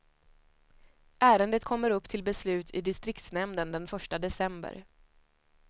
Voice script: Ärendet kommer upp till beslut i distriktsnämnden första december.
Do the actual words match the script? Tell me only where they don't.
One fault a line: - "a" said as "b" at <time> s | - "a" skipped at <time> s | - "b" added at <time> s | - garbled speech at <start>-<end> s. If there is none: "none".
- "den" added at 3.7 s